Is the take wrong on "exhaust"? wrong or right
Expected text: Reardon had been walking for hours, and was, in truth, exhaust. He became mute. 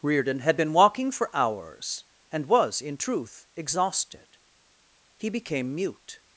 wrong